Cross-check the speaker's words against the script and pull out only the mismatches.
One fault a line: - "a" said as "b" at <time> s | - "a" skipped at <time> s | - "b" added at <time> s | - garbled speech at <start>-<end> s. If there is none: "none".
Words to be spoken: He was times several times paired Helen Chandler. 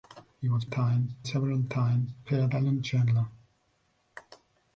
none